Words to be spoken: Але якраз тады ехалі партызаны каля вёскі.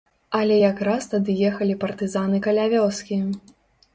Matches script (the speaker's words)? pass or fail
pass